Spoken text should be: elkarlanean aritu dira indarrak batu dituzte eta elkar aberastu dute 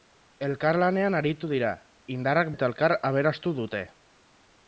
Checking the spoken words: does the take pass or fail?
fail